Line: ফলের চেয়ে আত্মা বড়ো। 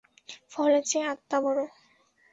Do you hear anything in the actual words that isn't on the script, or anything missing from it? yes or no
no